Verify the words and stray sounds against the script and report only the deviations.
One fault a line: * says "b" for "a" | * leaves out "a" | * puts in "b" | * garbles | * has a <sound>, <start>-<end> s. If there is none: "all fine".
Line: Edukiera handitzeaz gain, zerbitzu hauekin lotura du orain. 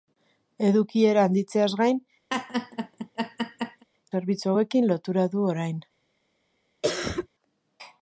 * has a laugh, 2.3-3.8 s
* has a cough, 6.8-7.3 s